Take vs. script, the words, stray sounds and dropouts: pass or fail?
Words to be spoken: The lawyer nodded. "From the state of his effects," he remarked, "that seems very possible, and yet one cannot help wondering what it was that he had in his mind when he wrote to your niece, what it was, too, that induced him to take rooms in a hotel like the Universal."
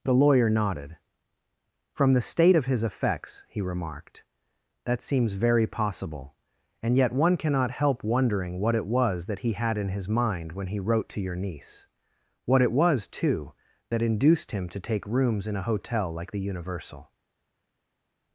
pass